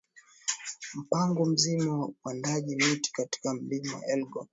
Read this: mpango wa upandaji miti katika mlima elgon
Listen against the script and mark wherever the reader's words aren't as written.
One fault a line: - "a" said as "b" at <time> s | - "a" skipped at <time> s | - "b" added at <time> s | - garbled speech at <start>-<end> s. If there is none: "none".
- "mzima" added at 1.4 s